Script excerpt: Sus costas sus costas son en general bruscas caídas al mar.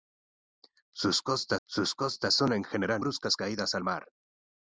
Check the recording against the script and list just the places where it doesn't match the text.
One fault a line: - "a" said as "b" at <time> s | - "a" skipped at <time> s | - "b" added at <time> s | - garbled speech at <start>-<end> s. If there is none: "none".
none